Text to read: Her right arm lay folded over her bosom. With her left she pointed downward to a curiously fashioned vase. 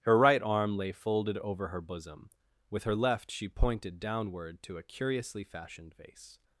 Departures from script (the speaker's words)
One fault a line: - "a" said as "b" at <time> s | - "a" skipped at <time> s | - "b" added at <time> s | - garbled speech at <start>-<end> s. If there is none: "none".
none